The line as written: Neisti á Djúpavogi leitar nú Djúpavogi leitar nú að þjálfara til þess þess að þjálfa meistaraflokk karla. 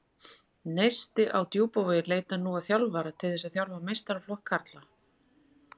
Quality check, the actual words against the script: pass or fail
fail